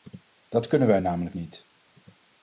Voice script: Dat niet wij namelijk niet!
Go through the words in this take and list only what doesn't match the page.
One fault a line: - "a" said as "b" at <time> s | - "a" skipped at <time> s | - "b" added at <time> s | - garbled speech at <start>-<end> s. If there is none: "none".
- "niet" said as "kunnen" at 0.7 s